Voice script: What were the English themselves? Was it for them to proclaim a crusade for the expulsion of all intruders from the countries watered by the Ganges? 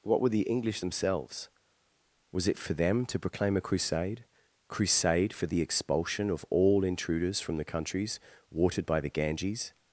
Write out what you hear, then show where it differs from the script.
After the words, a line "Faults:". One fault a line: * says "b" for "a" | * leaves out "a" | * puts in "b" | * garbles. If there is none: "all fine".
What were the English themselves? Was it for them to proclaim a crusade crusade for the expulsion of all intruders from the countries watered by the Ganges?
Faults:
* puts in "crusade"